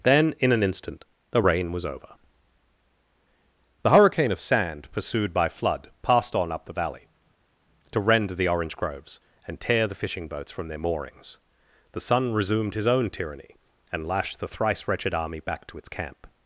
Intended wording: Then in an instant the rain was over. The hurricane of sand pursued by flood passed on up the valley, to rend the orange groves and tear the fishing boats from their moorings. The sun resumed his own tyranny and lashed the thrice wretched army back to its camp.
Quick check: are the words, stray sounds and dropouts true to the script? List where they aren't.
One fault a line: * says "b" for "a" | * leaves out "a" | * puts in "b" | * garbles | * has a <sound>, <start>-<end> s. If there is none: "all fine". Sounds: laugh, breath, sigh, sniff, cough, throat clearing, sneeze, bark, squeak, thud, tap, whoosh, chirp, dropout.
all fine